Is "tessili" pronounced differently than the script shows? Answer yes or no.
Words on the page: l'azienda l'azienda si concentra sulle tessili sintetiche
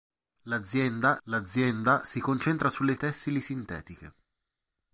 no